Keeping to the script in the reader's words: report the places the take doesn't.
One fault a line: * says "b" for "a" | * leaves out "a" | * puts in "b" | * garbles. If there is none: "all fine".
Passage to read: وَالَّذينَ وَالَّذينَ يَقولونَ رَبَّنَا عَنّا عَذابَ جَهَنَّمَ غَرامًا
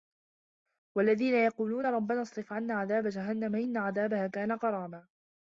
* leaves out "وَالَّذينَ"
* puts in "اصرِف"
* puts in "إِنَّ عَذابَها كانَ"